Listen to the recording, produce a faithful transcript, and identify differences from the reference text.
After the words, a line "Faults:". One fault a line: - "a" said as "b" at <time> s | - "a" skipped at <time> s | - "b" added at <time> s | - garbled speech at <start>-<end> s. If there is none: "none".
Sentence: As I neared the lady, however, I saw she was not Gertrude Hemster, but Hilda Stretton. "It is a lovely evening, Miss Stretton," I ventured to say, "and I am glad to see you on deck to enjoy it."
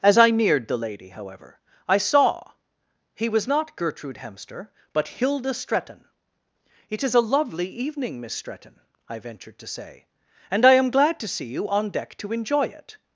As I neared the lady, however, I saw he was not Gertrude Hemster, but Hilda Stretton. "It is a lovely evening, Miss Stretton," I ventured to say, "and I am glad to see you on deck to enjoy it."
Faults:
- "she" said as "he" at 3.1 s